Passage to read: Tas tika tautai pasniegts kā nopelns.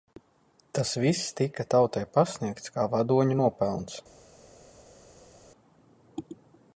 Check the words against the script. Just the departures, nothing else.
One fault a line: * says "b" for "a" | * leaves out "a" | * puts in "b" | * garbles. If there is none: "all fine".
* puts in "viss"
* puts in "vadoņu"